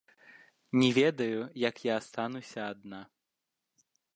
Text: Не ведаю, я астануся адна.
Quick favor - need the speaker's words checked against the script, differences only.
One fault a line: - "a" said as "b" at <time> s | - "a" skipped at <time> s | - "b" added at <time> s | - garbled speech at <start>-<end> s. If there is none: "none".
- "як" added at 1.5 s